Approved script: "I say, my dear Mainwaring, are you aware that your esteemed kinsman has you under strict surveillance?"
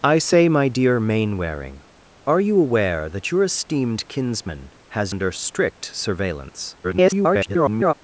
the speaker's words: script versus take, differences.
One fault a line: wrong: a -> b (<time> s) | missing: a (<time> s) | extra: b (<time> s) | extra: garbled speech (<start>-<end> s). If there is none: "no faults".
missing: you (5.1 s)
extra: garbled speech (6.8-8.0 s)